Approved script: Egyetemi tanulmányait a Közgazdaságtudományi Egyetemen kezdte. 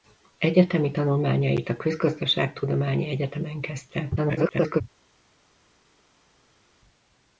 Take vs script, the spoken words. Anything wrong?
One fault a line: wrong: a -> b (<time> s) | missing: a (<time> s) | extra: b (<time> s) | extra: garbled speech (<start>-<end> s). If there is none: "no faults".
extra: garbled speech (4.2-4.8 s)